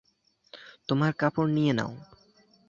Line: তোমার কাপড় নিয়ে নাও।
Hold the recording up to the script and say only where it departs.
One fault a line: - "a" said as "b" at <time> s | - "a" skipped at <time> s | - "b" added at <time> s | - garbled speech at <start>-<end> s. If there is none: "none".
none